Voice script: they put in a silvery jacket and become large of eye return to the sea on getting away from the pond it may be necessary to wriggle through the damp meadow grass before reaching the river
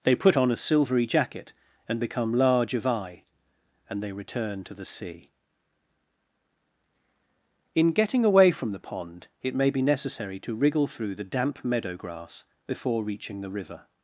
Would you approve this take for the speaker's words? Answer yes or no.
no